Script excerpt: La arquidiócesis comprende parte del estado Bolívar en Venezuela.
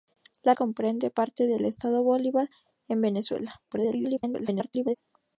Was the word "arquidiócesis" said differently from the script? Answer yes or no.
yes